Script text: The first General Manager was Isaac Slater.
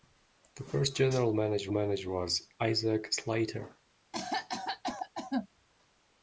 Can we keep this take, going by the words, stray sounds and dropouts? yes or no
no